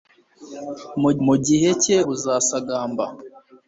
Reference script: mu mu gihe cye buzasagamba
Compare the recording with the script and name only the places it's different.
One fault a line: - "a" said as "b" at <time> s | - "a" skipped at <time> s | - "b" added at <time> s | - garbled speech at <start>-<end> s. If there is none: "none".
none